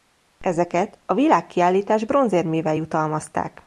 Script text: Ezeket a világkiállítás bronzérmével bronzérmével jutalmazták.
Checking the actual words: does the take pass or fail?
fail